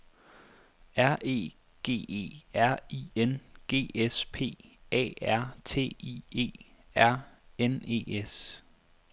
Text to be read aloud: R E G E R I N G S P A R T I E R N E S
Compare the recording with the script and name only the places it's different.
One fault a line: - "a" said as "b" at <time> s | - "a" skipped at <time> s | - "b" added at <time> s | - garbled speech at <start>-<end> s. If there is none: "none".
none